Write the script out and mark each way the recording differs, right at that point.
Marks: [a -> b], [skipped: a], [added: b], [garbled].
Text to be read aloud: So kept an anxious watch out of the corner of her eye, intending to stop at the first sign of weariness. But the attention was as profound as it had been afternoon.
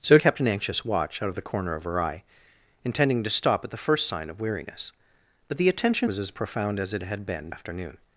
So kept an anxious watch out of the corner of her eye, intending to stop at the first sign of weariness. But the attention was as profound as it had been afternoon.